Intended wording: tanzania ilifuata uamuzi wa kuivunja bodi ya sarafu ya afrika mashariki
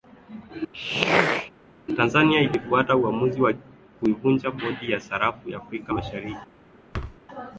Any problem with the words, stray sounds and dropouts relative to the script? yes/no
yes